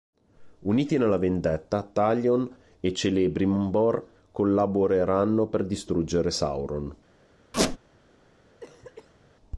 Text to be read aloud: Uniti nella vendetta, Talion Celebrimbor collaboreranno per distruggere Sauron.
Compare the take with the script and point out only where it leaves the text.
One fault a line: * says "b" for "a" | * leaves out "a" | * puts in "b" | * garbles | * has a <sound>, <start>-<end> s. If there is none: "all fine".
* puts in "e"
* has a squeak, 7.5-7.8 s
* has a cough, 8.6-9.4 s